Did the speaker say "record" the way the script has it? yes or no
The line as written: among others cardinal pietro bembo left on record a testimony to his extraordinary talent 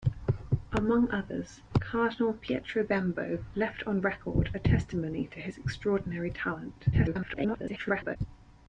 yes